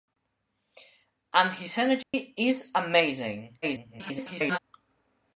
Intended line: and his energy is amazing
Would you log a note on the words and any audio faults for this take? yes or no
yes